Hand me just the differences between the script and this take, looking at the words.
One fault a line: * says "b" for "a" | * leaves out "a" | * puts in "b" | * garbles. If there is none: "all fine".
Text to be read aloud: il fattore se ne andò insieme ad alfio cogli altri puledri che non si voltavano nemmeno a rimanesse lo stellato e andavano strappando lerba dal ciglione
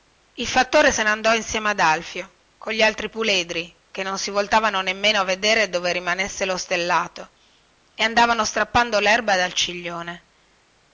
* puts in "vedere dove"